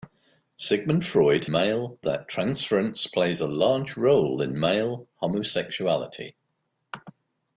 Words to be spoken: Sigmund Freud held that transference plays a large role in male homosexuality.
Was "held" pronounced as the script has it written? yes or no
no